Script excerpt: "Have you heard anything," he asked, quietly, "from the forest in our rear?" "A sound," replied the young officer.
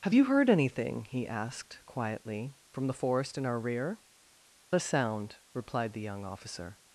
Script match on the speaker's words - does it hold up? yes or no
yes